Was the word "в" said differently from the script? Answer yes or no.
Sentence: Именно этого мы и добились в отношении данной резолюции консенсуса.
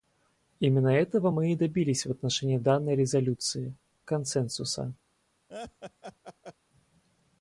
no